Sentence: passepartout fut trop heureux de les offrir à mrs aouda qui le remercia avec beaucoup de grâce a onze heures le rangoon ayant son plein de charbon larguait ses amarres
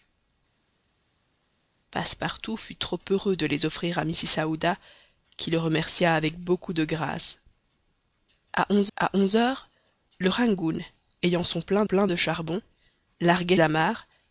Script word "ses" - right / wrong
wrong